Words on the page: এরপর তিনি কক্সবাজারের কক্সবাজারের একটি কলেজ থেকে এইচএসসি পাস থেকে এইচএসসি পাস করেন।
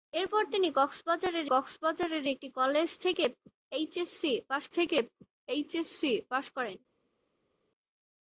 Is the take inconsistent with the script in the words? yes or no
no